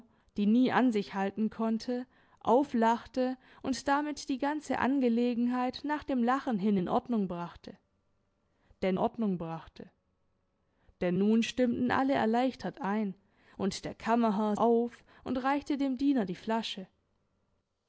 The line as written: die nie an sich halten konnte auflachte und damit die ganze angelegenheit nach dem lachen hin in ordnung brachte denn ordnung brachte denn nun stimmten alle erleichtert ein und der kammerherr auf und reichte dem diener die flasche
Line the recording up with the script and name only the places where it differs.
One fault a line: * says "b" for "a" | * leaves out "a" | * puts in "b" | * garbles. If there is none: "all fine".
all fine